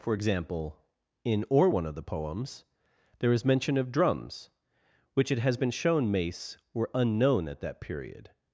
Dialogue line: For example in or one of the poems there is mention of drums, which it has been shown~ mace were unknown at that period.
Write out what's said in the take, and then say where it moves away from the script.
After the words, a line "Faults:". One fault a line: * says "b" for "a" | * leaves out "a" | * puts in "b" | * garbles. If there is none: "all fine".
For example in or one of the poems there is mention of drums, which it has been shown~ mace were unknown at that period.
Faults:
all fine